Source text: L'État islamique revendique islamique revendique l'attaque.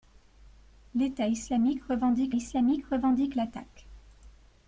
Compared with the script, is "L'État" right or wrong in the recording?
right